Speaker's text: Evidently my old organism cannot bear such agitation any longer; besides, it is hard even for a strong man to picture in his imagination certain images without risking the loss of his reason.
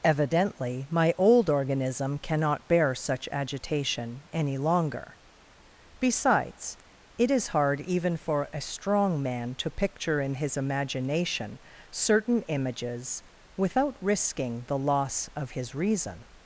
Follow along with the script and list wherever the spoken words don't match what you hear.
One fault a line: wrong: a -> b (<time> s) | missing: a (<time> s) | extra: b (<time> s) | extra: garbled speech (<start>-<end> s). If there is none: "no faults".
no faults